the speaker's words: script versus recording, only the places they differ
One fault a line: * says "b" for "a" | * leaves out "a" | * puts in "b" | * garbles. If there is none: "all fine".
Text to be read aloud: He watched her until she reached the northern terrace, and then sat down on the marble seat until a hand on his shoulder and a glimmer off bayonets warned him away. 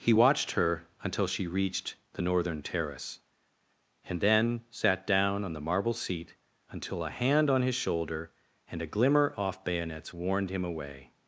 all fine